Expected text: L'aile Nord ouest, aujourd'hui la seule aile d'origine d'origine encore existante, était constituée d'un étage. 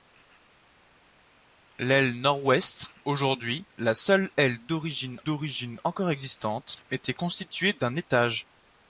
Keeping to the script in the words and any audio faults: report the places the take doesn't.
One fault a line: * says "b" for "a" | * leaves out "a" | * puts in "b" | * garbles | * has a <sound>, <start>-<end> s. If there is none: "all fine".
all fine